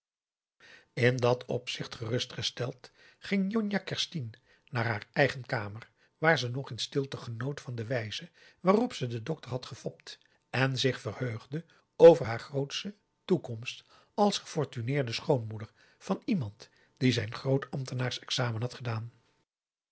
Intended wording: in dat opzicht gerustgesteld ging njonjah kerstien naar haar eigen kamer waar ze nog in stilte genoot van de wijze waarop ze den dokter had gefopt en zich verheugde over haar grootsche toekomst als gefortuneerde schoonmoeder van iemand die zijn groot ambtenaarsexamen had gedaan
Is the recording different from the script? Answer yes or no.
no